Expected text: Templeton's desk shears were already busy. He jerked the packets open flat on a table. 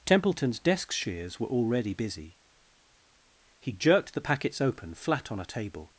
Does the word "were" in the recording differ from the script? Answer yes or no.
no